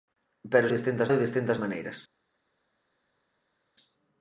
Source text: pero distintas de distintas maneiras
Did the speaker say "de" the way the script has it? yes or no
yes